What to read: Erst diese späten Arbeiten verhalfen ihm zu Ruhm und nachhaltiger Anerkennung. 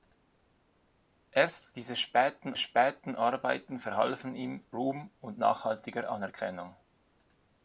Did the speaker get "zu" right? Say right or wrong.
wrong